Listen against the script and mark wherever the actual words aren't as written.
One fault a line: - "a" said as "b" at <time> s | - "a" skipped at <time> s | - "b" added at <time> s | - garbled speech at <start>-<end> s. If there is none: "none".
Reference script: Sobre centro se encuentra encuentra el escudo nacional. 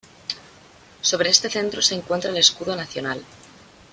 - "este" added at 1.3 s
- "encuentra" skipped at 2.3 s